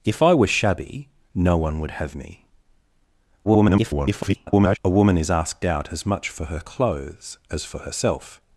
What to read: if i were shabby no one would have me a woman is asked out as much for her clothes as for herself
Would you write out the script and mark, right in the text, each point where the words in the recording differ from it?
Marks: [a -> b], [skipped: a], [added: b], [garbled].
if i were shabby no one would have me [garbled] a woman is asked out as much for her clothes as for herself